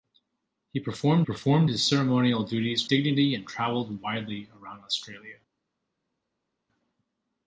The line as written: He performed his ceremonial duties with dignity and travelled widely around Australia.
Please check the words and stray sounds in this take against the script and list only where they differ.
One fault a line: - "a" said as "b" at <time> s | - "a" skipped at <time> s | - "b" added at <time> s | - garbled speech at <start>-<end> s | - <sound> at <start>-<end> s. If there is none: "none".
- "performed" added at 1.2 s
- "with" skipped at 2.9 s